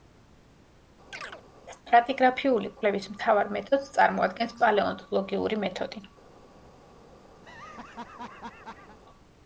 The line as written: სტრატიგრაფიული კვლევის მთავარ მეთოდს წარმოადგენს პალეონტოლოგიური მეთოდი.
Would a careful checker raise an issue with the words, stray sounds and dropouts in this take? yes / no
yes